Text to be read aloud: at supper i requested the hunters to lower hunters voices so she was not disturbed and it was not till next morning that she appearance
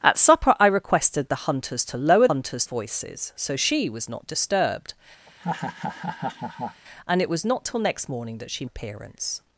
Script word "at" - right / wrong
right